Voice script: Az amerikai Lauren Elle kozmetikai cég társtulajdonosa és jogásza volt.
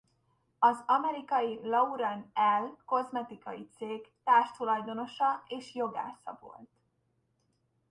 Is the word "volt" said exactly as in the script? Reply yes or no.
yes